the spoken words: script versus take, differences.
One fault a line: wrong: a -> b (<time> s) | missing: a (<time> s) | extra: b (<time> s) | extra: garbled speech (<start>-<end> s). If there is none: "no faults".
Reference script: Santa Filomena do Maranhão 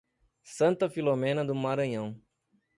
no faults